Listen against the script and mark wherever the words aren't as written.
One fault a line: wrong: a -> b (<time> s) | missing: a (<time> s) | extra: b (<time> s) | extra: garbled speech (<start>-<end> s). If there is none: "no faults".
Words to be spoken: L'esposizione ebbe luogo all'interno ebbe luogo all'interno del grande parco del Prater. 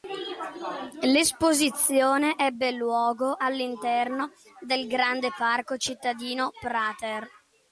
missing: ebbe luogo all'interno (4.3 s)
wrong: del -> cittadino (5.8 s)